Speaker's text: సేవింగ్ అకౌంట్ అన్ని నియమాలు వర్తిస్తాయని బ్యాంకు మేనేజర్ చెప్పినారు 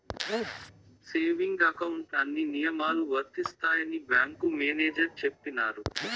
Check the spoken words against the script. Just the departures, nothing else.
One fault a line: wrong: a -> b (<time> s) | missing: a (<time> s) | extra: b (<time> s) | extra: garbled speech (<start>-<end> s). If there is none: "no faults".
no faults